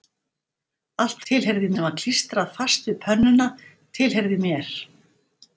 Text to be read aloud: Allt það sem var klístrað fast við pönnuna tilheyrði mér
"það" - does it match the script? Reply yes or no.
no